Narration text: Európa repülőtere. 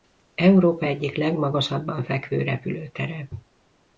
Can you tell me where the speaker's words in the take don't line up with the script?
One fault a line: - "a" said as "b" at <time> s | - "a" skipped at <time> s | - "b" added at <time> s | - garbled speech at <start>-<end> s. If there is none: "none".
- "egyik legmagasabban fekvő" added at 0.8 s